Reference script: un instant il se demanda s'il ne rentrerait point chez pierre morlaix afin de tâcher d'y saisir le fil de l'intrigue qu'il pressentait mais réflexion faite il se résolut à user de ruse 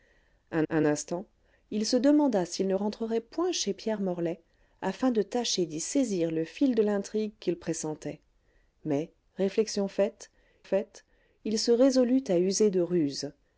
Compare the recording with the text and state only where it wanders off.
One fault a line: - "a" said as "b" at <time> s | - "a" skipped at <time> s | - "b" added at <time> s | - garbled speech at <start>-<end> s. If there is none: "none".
- "un" added at 0.7 s
- "faite" added at 10.6 s